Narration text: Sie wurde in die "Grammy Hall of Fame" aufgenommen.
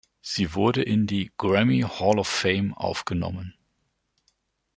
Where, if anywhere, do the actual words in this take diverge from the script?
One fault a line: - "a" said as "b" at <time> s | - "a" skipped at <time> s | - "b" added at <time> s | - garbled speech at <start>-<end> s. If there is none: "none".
none